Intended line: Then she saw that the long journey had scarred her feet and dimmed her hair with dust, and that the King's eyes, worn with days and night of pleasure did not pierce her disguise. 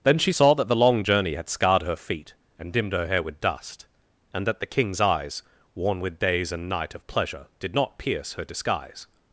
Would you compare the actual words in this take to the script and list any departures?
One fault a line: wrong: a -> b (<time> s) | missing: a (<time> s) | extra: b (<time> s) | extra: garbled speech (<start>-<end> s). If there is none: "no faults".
no faults